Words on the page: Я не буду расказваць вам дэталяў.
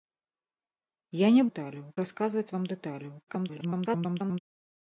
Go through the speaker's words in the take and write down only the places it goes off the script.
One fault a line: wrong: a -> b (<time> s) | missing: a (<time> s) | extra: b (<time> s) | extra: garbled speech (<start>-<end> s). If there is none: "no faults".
wrong: буду -> дэталяў (1.5 s)
extra: garbled speech (3.3-4.4 s)